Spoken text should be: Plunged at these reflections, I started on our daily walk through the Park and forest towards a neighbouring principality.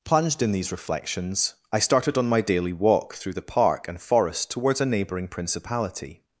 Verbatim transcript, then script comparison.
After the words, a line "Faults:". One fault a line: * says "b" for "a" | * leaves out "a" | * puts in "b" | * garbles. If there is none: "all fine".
Plunged in these reflections, I started on my daily walk through the Park and forest towards a neighbouring principality.
Faults:
* says "in" for "at"
* says "my" for "our"